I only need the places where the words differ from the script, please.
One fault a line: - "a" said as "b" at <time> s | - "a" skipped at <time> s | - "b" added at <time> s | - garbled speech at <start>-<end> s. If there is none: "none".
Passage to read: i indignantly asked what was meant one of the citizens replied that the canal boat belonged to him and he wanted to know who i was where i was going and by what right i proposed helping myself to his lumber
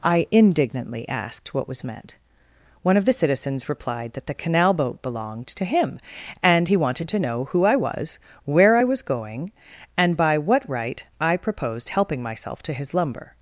none